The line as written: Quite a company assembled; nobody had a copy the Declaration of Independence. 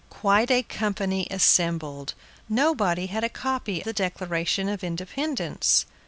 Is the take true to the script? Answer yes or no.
yes